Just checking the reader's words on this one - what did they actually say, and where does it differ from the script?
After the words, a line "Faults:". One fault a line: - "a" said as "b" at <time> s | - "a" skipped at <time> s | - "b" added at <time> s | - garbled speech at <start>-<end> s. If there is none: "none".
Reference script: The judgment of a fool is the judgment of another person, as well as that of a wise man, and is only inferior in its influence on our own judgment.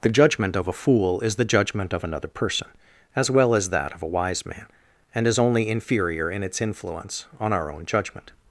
The judgment of a fool is the judgment of another person, as well as that of a wise man, and is only inferior in its influence on our own judgment.
Faults:
none